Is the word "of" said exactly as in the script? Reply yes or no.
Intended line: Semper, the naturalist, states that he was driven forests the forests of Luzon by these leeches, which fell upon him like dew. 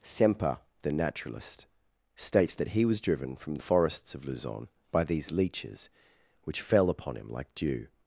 yes